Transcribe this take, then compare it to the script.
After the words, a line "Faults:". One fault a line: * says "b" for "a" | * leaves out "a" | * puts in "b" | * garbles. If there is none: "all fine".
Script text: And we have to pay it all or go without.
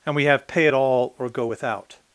And we have pay it all or go without.
Faults:
* leaves out "to"